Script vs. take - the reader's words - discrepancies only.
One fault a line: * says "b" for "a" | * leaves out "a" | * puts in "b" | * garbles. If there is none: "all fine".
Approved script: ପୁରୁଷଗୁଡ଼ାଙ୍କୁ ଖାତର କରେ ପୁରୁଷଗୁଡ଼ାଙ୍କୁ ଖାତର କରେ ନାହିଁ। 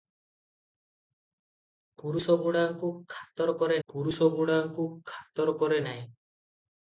all fine